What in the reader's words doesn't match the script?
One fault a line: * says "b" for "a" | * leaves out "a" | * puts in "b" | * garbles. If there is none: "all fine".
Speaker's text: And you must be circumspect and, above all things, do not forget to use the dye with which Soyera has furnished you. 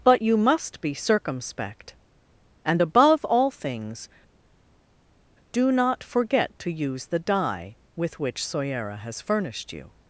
* says "But" for "And"